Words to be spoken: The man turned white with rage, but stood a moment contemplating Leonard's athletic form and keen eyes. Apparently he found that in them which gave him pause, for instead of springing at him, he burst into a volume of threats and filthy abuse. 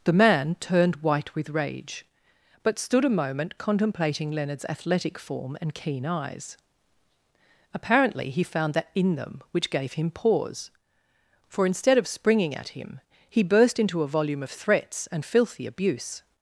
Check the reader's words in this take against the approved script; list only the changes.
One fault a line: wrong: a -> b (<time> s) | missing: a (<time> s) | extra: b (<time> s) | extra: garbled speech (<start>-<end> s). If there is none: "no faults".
no faults